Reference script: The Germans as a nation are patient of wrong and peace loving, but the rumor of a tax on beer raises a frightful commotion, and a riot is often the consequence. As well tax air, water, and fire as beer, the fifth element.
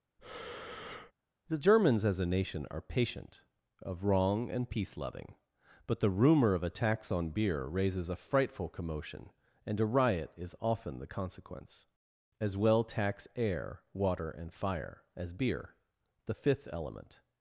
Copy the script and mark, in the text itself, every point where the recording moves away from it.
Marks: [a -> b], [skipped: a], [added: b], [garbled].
The Germans as a nation are patient of wrong and peace loving, but the rumor of a tax on beer raises a frightful commotion, and a riot is often the consequence. As well tax air, water, and fire as beer, the fifth element.